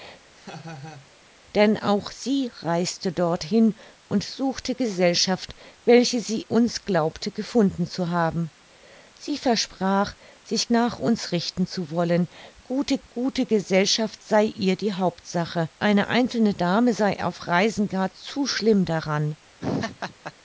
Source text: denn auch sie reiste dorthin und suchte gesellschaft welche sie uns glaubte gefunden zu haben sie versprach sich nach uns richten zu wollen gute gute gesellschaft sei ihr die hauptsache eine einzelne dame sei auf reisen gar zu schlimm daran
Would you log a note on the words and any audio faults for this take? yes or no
yes